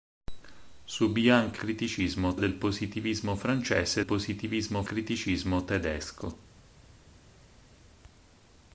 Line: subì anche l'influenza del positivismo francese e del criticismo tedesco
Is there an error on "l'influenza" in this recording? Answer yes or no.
yes